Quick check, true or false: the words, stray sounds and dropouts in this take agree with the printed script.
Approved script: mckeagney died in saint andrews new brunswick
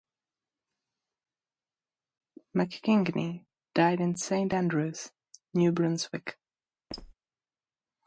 false